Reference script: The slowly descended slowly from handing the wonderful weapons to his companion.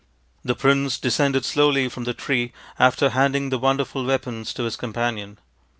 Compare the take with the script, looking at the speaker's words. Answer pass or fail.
fail